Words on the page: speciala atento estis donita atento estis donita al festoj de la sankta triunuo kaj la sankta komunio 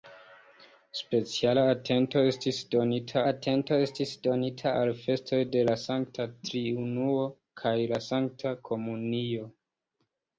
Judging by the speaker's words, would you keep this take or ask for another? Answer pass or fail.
pass